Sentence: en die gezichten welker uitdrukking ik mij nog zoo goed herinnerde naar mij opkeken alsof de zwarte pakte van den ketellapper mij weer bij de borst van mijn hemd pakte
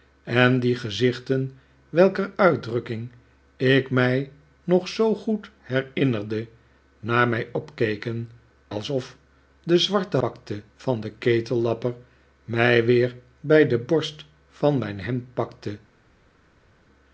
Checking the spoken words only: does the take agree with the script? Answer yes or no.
yes